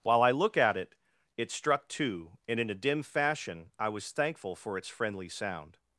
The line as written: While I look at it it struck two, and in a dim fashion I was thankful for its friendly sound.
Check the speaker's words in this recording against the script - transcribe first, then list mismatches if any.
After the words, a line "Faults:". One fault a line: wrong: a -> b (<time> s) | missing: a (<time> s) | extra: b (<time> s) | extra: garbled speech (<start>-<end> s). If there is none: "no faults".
While I look at it it struck two, and in a dim fashion I was thankful for its friendly sound.
Faults:
no faults